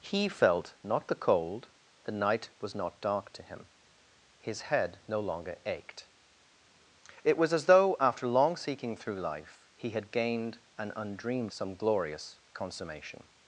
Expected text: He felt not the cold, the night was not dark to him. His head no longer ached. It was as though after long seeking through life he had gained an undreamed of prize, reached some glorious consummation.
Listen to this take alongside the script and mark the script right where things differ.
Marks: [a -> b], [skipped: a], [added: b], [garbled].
He felt not the cold, the night was not dark to him. His head no longer ached. It was as though after long seeking through life he had gained an undreamed [skipped: of prize, reached] some glorious consummation.